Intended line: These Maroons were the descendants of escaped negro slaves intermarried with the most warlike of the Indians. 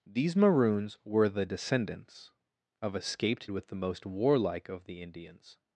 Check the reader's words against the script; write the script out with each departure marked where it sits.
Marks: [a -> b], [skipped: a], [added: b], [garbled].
These Maroons were the descendants of escaped [skipped: negro slaves intermarried] with the most warlike of the Indians.